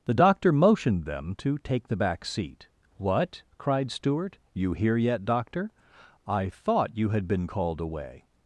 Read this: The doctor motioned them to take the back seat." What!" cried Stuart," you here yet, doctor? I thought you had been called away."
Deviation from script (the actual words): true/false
false